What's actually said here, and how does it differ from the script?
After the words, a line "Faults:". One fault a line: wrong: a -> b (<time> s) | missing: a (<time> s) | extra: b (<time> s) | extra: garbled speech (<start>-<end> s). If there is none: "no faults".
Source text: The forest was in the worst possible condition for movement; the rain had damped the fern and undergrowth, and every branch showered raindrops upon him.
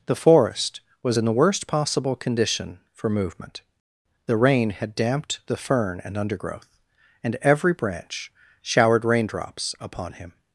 The forest was in the worst possible condition for movement; the rain had damped the fern and undergrowth, and every branch showered raindrops upon him.
Faults:
no faults